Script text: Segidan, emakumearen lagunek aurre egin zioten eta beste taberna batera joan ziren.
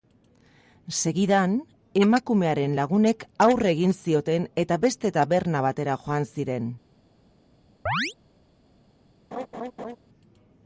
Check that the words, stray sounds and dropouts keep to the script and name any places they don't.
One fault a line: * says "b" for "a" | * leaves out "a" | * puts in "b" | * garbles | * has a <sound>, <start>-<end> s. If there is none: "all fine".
* has a chirp, 7.9-8.1 s
* has a laugh, 9.3-10.0 s